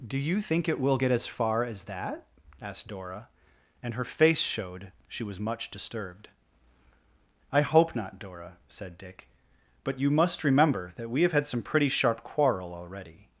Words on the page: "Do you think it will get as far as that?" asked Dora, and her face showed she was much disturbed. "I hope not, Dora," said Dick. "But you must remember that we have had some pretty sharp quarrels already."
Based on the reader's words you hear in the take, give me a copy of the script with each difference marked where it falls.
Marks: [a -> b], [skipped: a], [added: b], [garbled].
"Do you think it will get as far as that?" asked Dora, and her face showed she was much disturbed. "I hope not, Dora," said Dick. "But you must remember that we have had some pretty sharp [quarrels -> quarrel] already."